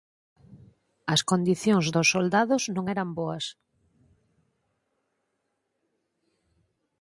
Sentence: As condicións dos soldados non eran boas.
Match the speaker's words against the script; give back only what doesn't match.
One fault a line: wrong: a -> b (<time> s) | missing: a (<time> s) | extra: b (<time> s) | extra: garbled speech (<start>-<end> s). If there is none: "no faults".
no faults